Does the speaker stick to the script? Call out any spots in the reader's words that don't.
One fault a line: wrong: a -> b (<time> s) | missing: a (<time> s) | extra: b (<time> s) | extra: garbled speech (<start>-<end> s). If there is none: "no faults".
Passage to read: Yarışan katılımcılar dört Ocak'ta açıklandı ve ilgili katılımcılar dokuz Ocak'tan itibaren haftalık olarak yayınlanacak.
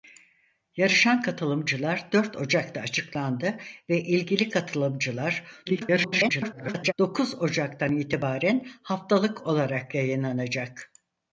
extra: garbled speech (5.7-6.9 s)